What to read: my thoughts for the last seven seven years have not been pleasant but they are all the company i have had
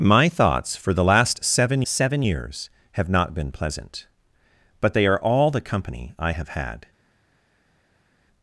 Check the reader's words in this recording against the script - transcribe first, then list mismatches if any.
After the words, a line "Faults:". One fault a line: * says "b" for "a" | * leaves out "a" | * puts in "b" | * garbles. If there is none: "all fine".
my thoughts for the last seven seven years have not been pleasant but they are all the company i have had
Faults:
all fine